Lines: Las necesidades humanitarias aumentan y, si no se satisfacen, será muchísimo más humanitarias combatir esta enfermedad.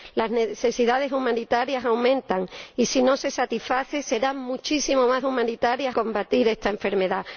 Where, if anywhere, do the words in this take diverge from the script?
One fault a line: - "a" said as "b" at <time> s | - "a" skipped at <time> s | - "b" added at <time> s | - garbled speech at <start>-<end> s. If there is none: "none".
none